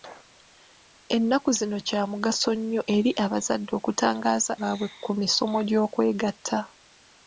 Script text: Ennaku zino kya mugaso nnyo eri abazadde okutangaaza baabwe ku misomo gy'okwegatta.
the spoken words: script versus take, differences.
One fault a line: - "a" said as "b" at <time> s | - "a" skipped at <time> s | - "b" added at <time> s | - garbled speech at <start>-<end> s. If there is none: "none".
none